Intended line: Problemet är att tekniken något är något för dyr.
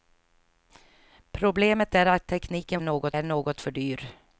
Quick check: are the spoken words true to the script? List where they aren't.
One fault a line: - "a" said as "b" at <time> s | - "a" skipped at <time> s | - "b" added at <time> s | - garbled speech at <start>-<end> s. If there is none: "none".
none